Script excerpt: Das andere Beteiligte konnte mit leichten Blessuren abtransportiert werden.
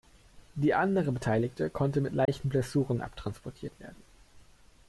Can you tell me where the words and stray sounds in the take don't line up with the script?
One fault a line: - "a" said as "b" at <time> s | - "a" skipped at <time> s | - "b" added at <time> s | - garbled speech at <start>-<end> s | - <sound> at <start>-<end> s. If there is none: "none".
- "Das" said as "Die" at 0.6 s
- dropout at 2.3-2.3 s